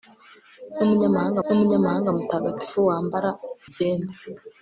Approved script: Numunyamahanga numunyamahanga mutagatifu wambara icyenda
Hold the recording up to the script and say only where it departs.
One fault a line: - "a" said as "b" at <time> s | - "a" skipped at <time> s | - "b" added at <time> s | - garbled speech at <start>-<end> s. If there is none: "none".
none